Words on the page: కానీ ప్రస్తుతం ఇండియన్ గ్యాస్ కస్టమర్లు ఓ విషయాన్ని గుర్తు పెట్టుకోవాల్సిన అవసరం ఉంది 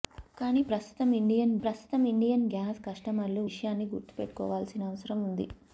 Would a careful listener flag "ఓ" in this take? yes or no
yes